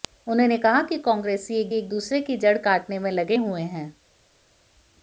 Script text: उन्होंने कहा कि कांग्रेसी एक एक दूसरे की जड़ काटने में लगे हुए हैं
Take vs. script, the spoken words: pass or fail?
pass